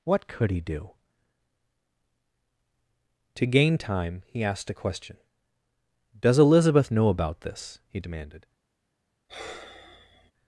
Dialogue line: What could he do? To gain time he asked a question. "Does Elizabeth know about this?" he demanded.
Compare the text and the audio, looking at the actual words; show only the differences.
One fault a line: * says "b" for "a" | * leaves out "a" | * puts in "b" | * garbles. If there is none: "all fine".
all fine